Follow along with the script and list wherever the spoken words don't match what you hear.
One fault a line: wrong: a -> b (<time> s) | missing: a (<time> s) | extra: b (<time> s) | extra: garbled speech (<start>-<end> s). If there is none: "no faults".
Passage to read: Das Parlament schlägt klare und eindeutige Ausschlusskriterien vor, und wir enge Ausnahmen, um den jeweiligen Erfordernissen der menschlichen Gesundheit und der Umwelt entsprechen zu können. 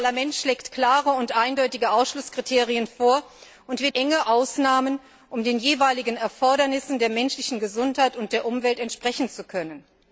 no faults